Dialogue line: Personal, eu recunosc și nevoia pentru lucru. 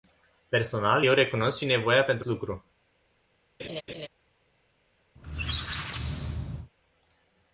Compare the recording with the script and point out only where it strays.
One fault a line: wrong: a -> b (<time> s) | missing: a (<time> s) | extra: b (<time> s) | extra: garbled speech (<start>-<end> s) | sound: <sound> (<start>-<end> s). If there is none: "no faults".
sound: laugh (3.6-4.1 s)
sound: squeak (5.2-6.7 s)